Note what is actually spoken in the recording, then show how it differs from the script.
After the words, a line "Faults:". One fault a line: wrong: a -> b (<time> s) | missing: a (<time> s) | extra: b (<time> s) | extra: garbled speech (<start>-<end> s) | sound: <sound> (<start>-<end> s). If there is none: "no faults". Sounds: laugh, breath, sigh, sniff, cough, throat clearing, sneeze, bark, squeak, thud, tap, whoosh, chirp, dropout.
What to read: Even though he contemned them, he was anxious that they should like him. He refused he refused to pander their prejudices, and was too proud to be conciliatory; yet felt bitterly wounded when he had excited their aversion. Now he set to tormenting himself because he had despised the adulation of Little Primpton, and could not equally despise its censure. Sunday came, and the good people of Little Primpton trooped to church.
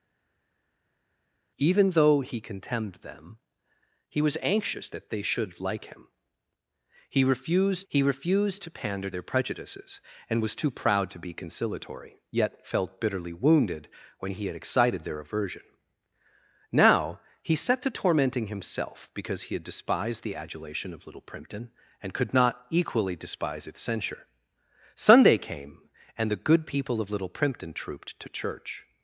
Even though he contemned them, he was anxious that they should like him. He refused he refused to pander their prejudices, and was too proud to be conciliatory; yet felt bitterly wounded when he had excited their aversion. Now he set to tormenting himself because he had despised the adulation of Little Primpton, and could not equally despise its censure. Sunday came, and the good people of Little Primpton trooped to church.
Faults:
no faults